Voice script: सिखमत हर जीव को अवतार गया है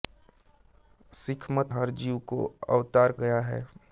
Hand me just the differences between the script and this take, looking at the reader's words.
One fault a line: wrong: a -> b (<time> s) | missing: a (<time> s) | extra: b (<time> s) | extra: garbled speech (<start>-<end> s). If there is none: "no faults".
no faults